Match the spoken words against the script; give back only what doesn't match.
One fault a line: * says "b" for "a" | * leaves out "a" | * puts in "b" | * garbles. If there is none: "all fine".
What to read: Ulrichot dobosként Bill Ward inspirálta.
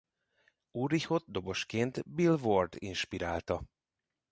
all fine